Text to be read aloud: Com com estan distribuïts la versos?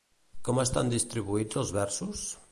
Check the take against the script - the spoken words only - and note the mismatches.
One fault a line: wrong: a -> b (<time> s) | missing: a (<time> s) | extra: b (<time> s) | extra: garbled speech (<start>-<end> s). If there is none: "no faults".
missing: com (0.6 s)
wrong: la -> els (1.6 s)